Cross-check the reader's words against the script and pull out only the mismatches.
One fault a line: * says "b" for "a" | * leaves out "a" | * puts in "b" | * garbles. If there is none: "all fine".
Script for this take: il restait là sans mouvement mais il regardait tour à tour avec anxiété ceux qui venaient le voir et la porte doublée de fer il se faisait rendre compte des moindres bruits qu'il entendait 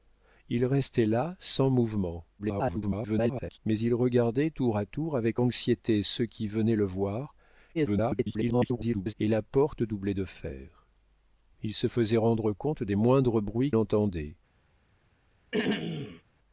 * garbles
* garbles
* leaves out "qu'il"